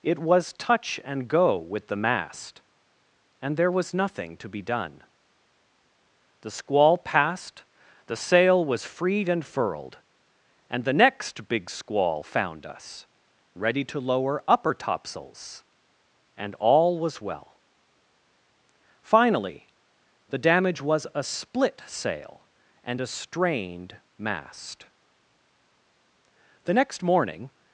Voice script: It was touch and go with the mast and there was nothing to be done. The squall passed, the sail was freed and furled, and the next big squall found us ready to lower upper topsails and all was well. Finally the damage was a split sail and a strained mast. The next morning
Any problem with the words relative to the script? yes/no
no